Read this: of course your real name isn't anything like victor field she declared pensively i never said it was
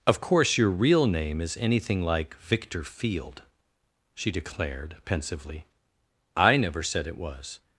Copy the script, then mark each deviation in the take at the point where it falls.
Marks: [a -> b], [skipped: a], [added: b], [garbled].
of course your real name [isn't -> is] anything like victor field she declared pensively i never said it was